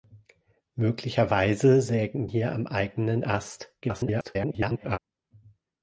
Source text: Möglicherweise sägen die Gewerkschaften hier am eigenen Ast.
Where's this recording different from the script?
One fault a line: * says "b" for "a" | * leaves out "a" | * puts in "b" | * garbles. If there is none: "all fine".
* leaves out "die Gewerkschaften"
* garbles